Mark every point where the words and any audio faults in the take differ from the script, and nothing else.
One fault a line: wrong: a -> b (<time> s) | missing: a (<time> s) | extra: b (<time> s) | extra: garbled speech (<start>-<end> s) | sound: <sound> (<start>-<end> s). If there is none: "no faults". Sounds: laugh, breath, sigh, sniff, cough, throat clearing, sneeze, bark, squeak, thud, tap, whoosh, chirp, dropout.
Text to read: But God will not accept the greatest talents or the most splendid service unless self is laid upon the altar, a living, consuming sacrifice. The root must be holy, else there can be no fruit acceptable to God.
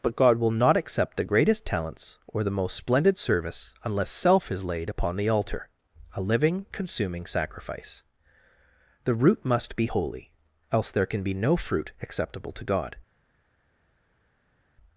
no faults